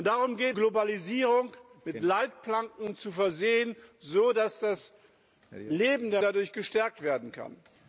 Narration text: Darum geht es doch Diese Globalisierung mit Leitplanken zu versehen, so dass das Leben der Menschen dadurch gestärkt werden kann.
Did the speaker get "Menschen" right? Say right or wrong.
wrong